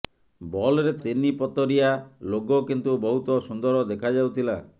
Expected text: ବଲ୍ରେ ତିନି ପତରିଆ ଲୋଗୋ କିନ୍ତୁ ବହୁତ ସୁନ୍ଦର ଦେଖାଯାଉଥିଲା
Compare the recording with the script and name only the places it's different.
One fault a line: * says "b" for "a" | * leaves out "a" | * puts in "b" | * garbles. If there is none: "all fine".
all fine